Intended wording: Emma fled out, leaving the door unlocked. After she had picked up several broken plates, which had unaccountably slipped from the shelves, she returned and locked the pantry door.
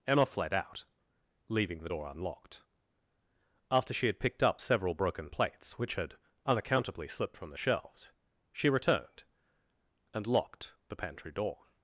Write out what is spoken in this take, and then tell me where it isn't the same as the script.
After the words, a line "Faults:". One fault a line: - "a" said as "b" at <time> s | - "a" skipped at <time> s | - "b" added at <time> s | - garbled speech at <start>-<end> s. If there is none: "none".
Emma fled out, leaving the door unlocked. After she had picked up several broken plates, which had unaccountably slipped from the shelves, she returned and locked the pantry door.
Faults:
none